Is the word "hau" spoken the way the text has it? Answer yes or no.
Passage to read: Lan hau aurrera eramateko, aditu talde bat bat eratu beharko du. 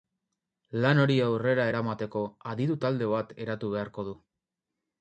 no